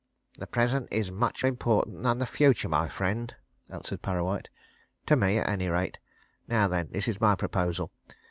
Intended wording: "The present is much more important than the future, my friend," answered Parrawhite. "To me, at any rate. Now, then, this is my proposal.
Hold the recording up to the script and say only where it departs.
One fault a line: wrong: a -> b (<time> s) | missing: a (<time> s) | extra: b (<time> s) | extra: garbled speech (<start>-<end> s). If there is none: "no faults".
missing: more (1.4 s)